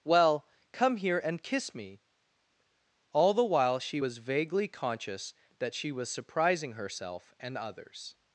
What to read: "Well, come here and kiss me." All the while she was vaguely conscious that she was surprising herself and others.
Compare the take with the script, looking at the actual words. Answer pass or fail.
pass